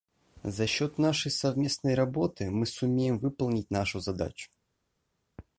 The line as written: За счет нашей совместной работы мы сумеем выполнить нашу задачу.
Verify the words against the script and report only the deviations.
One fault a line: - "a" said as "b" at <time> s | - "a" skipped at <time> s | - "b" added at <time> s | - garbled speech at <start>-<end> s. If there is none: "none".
none